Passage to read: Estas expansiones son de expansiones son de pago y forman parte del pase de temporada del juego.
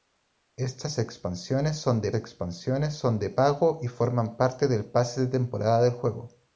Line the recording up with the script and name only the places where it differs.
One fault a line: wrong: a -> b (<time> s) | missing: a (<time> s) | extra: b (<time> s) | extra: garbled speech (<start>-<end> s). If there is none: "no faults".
no faults